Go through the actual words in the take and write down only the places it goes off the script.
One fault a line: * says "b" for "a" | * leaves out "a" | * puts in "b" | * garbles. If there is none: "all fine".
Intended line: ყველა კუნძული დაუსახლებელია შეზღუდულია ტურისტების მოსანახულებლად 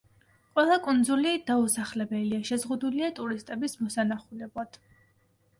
all fine